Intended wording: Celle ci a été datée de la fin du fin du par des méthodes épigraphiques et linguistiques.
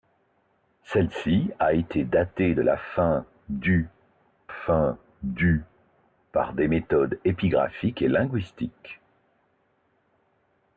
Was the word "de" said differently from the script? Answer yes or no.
no